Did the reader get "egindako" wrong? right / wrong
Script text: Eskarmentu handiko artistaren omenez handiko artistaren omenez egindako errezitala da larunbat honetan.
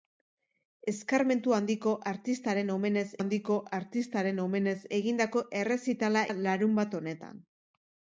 right